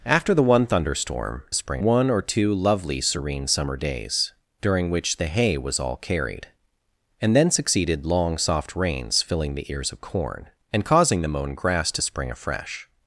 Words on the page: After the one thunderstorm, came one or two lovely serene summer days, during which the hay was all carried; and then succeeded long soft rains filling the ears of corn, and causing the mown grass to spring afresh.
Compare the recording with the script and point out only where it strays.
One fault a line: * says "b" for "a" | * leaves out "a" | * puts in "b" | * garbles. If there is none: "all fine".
* says "spring" for "came"